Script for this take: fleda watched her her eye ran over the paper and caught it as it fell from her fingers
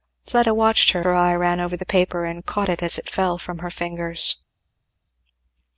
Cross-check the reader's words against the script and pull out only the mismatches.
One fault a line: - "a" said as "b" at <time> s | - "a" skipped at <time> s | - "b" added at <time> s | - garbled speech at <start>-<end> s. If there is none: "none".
none